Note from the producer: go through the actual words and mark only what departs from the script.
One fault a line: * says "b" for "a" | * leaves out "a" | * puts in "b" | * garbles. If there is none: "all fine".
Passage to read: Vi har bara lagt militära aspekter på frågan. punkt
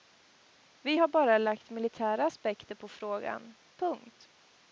all fine